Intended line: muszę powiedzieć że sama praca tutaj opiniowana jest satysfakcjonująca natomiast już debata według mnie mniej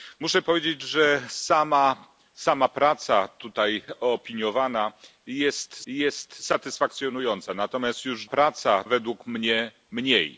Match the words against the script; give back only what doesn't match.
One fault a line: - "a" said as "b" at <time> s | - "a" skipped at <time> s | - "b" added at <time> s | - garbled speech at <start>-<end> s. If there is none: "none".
- "jest" added at 5.9 s
- "debata" said as "praca" at 8.3 s